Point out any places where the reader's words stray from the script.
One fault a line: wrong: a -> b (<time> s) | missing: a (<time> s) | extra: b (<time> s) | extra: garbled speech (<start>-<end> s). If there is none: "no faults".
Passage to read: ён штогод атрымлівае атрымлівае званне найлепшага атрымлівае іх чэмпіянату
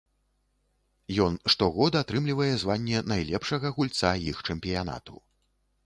missing: атрымлівае (2.5 s)
wrong: атрымлівае -> гульца (3.8 s)